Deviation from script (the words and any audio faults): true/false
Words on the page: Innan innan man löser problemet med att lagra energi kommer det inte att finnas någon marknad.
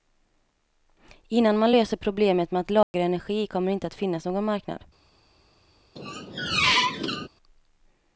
true